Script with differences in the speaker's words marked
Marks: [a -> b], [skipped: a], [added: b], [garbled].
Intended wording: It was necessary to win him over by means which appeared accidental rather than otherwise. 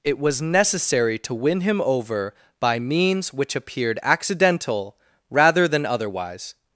It was necessary to win him over by means which appeared accidental rather than otherwise.